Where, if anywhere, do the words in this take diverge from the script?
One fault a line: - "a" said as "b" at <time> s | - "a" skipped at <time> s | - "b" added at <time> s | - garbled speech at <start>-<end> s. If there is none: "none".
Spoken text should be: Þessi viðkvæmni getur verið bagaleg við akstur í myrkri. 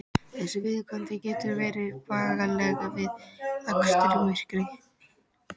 none